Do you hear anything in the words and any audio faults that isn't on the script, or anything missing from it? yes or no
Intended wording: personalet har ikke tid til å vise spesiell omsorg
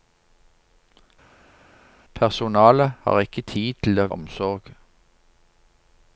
yes